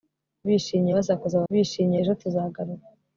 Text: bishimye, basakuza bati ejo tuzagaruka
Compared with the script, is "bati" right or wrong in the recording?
wrong